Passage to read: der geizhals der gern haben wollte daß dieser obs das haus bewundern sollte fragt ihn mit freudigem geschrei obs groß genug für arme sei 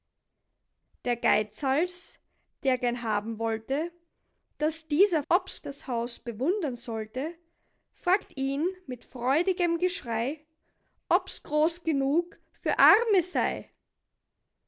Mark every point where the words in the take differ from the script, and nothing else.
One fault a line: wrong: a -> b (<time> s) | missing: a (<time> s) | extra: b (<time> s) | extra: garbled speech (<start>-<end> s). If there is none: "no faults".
no faults